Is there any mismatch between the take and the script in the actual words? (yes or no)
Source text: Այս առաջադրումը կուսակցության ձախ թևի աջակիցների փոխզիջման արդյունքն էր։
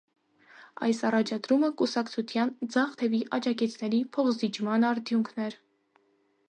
no